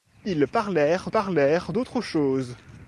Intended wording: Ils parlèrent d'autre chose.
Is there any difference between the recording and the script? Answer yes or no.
yes